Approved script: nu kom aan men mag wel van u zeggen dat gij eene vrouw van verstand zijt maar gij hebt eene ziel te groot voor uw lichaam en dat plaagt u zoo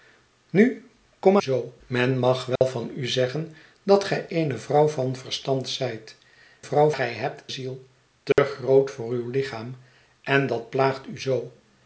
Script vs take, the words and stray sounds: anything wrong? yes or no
yes